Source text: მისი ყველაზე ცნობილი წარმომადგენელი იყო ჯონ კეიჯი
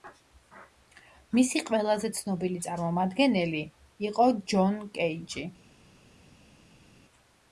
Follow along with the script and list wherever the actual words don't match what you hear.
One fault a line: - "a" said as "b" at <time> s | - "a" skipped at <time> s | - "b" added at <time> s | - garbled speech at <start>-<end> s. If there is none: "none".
none